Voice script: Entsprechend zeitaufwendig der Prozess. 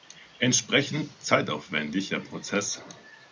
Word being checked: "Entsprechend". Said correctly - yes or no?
yes